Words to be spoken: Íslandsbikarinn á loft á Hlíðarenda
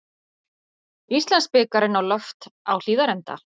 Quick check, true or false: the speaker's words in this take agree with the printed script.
true